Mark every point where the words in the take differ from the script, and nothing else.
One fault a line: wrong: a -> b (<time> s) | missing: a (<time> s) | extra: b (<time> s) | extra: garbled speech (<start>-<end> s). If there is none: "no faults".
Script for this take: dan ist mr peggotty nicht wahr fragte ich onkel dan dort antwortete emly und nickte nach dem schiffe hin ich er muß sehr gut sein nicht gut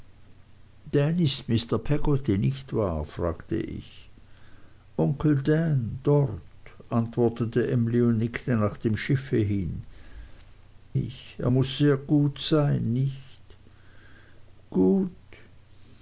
no faults